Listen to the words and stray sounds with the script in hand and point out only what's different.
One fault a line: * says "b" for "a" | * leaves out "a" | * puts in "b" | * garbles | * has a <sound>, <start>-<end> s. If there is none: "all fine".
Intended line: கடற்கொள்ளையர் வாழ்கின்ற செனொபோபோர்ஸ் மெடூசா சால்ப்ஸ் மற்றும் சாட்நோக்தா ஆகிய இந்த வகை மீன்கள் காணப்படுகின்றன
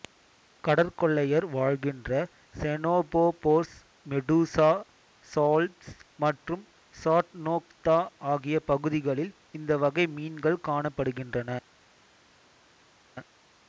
* puts in "பகுதிகளில்"